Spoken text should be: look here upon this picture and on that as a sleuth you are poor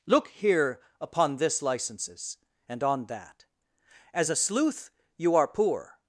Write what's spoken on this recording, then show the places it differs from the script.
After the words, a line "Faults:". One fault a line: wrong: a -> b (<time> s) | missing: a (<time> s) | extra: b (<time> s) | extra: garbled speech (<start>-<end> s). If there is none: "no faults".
look here upon this licenses and on that as a sleuth you are poor
Faults:
wrong: picture -> licenses (1.6 s)